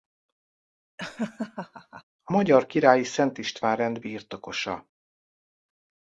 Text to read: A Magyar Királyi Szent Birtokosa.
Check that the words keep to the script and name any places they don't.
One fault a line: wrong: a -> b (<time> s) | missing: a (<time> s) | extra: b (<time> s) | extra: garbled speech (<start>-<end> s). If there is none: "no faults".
extra: István Rend (3.4 s)